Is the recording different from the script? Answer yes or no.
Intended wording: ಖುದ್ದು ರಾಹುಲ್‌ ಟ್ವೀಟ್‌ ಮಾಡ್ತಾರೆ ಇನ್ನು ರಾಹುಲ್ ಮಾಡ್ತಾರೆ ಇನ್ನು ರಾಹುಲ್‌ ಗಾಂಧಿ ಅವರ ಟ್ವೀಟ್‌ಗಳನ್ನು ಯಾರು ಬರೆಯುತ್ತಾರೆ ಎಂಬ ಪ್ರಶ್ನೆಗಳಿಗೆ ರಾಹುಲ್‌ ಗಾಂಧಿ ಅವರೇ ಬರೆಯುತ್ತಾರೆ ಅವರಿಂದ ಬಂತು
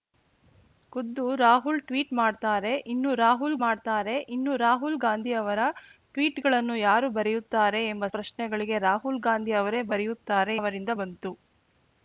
no